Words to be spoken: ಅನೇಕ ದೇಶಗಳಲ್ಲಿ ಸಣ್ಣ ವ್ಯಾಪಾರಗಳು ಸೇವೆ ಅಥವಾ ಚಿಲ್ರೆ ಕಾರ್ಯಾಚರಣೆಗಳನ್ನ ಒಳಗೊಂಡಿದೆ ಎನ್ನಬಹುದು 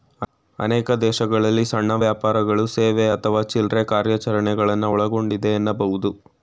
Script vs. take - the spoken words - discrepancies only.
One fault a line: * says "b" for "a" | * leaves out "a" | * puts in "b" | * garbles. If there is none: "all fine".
all fine